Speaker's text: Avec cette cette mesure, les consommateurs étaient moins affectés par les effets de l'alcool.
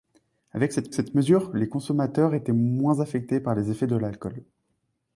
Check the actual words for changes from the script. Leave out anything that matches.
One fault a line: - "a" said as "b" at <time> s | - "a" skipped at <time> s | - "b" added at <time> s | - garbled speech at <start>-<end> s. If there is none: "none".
none